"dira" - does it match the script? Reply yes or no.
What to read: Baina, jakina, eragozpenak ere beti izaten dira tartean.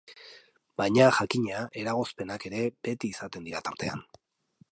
yes